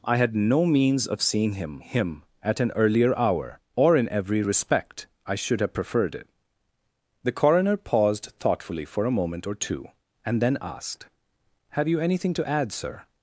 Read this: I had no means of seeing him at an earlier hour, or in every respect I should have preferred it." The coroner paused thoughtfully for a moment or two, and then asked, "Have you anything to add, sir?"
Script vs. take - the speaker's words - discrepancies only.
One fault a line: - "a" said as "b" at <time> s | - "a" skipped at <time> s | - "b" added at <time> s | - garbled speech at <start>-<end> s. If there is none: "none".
- "him" added at 1.8 s